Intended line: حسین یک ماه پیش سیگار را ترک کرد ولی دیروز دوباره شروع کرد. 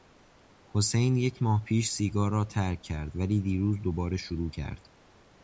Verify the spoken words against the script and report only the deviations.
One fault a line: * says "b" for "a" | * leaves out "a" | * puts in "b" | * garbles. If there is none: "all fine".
all fine